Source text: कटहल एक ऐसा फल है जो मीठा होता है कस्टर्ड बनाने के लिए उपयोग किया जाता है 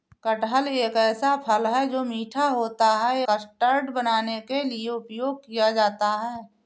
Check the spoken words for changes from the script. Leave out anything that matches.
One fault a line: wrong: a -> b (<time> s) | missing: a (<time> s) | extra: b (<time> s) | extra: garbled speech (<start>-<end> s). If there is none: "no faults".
no faults